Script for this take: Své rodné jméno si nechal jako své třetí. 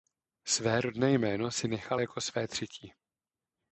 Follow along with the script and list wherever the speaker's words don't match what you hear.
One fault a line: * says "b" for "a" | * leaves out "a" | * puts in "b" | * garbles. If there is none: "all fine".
all fine